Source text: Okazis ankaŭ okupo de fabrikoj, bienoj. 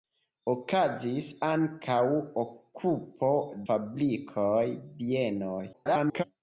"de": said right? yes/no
no